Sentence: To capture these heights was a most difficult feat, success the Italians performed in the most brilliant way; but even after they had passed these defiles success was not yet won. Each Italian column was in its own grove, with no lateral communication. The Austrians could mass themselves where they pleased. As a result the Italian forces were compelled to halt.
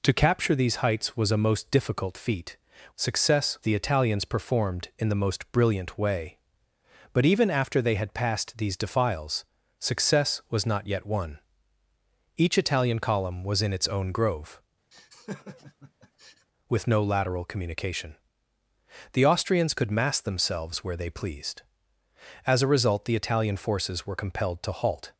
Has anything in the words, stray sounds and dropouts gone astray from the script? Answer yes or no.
yes